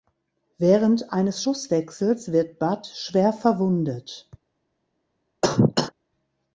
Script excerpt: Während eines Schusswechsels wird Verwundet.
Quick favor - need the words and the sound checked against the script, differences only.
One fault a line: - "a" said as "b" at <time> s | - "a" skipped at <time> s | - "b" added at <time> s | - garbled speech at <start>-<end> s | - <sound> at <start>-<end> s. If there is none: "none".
- "Bud schwer" added at 2.6 s
- cough at 5.4-5.9 s